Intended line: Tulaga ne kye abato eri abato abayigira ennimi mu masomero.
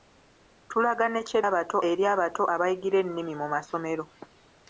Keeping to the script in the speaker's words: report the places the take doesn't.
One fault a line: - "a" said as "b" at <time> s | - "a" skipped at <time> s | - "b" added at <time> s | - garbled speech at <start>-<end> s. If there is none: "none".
none